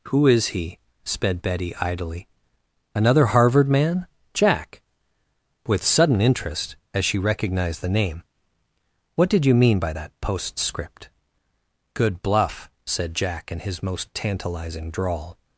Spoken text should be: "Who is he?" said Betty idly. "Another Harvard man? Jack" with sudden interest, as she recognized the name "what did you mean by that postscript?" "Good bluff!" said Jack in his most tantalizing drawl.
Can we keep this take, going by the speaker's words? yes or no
no